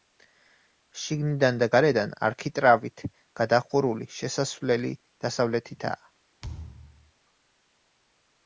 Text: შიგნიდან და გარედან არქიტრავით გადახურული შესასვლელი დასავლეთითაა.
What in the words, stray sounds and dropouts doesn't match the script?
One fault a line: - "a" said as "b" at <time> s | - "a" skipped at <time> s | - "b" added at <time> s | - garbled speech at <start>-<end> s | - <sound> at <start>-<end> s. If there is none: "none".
- thud at 6.4-7.1 s